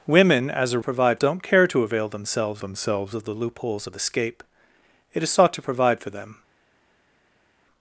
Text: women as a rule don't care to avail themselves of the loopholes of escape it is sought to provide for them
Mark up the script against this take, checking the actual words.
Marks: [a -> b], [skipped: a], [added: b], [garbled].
women as a [rule -> provide] don't care to avail themselves [added: themselves] of the loopholes of escape it is sought to provide for them